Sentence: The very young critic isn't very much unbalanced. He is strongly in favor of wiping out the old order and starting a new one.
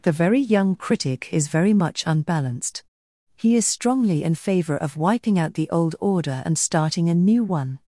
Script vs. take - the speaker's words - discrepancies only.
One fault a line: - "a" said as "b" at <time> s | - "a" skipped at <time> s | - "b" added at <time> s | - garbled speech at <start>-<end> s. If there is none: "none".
- "isn't" said as "is" at 1.3 s